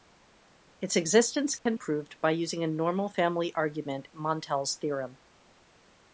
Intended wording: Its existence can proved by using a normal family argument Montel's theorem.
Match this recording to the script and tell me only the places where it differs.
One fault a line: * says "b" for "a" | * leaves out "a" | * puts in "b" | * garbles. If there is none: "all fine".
all fine